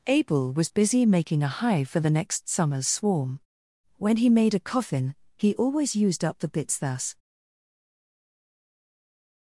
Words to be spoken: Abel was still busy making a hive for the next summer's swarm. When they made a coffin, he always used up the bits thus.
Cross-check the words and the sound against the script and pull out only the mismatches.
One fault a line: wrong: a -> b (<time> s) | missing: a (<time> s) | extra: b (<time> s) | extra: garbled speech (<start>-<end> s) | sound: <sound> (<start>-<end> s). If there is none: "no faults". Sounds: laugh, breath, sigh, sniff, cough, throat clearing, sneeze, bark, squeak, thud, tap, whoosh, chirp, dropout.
missing: still (0.7 s)
wrong: they -> he (4.2 s)